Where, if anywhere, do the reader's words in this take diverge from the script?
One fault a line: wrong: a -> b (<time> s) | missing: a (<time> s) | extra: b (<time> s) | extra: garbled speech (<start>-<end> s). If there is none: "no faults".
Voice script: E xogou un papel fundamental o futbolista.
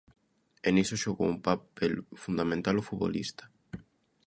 extra: niso (0.8 s)